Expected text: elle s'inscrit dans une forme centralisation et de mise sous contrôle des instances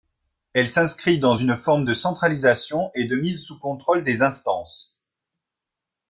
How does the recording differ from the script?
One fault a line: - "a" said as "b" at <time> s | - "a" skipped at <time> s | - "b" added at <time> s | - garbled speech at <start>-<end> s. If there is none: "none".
- "de" added at 1.8 s